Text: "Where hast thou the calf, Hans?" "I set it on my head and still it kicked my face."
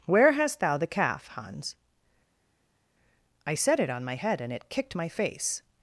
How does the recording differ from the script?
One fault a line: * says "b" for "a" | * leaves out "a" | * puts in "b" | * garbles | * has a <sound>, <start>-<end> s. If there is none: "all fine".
* leaves out "still"